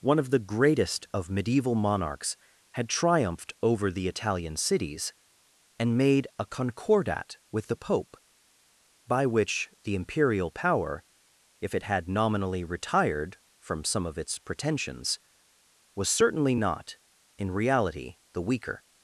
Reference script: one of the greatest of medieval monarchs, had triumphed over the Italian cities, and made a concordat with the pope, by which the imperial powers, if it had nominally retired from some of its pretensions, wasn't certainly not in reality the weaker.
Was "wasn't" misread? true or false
true